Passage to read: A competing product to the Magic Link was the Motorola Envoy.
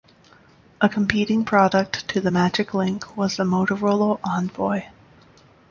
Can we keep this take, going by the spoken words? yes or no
yes